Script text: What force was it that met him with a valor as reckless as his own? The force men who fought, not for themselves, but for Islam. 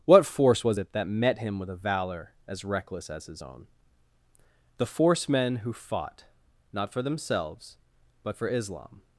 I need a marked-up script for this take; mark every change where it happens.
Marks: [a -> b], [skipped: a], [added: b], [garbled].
What force was it that met him with a valor as reckless as his own? The force men who fought, not for themselves, but for Islam.